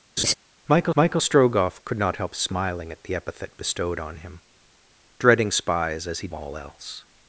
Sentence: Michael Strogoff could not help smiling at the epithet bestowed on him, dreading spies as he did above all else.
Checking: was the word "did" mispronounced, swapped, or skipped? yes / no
yes